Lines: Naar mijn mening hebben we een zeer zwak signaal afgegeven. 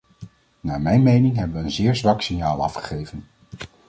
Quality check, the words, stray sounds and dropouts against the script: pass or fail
pass